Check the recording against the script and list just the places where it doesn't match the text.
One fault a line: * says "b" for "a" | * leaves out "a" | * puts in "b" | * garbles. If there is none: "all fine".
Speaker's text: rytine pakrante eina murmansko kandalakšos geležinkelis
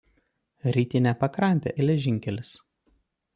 * leaves out "eina murmansko kandalakšos"